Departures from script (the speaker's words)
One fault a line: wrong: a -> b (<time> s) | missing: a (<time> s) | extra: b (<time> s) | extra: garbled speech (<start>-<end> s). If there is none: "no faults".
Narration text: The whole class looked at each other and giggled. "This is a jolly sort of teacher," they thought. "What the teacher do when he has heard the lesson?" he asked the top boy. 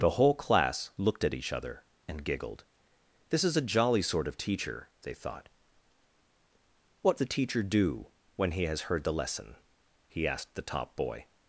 no faults